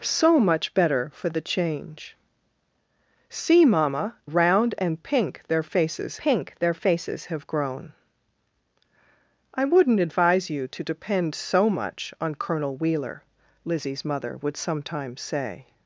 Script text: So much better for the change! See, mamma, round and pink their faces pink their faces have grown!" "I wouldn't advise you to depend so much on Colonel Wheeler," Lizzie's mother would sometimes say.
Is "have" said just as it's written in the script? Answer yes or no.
yes